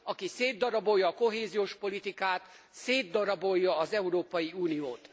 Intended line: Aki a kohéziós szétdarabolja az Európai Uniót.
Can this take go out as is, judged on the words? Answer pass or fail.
fail